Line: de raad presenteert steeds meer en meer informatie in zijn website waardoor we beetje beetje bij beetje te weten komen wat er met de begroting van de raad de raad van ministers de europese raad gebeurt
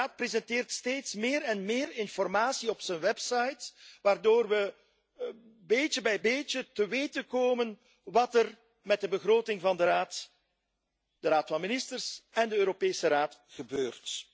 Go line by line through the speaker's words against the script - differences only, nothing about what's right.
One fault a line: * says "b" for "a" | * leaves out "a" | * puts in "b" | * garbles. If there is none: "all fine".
* says "op" for "in"
* leaves out "beetje"
* puts in "en"